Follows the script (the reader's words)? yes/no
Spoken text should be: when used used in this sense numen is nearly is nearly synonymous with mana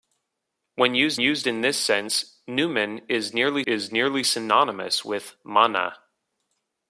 yes